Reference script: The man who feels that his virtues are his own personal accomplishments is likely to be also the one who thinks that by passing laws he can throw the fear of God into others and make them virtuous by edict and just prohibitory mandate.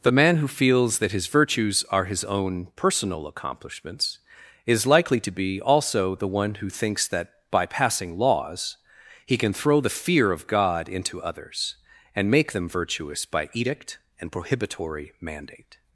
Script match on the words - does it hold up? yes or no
no